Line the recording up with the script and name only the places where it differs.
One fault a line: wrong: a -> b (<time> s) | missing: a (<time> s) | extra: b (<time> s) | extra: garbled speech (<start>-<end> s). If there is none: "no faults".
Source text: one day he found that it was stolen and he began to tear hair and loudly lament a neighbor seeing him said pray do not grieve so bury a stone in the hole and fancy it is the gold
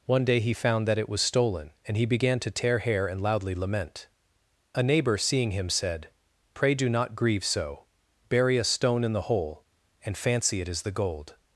no faults